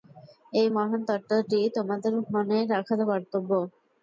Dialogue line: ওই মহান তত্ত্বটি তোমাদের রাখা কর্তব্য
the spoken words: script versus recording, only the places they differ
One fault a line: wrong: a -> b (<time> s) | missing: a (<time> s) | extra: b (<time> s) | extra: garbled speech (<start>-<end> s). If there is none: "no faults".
wrong: ওই -> এই (0.5 s)
extra: মনে (2.3 s)